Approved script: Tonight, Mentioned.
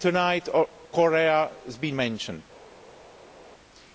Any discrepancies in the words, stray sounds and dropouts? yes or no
yes